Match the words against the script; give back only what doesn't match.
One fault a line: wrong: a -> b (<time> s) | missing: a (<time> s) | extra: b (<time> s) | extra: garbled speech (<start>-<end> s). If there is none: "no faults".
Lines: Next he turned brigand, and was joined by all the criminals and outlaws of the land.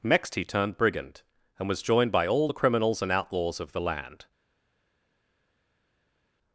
no faults